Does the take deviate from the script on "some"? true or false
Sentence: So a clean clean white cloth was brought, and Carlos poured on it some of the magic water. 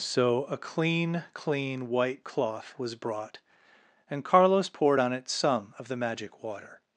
false